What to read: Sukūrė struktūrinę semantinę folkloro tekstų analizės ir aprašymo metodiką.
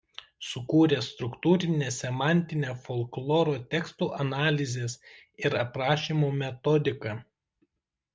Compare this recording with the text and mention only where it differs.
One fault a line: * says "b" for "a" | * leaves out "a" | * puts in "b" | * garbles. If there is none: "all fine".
all fine